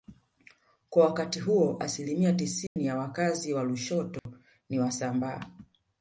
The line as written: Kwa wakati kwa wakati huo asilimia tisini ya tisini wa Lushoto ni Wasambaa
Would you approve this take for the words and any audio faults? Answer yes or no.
no